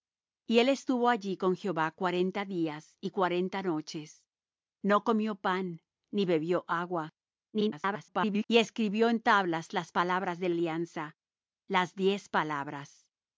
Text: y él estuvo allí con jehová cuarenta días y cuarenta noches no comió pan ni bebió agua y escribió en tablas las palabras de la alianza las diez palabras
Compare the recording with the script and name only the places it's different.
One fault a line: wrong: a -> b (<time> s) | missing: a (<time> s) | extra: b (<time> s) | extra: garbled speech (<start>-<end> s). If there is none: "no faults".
extra: garbled speech (7.5-8.5 s)
missing: la (10.5 s)